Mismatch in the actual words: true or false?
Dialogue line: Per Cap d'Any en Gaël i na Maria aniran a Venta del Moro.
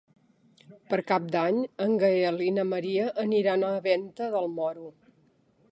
false